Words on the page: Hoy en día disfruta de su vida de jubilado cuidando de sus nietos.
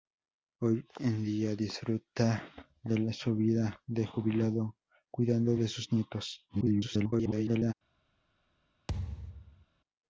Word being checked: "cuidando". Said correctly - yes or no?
yes